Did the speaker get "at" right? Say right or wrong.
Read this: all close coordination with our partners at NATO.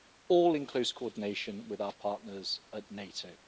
right